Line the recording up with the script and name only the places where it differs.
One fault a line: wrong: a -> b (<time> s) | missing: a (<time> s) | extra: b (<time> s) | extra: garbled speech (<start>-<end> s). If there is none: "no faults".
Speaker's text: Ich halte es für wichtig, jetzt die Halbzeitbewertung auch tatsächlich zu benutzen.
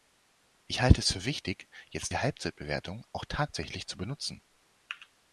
no faults